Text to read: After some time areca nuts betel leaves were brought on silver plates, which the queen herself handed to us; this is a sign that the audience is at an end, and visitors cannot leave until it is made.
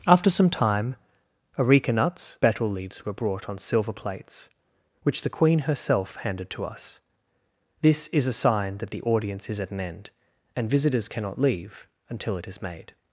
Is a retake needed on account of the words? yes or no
no